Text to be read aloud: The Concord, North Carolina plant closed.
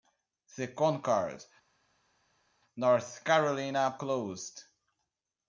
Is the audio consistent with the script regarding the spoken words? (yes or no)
no